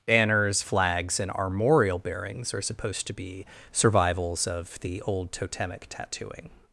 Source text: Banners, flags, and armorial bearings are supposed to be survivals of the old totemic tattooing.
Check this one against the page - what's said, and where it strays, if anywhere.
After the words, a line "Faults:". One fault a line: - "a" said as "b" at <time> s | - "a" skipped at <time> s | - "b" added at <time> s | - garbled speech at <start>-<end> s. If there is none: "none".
Banners, flags, and armorial bearings are supposed to be survivals of the old totemic tattooing.
Faults:
none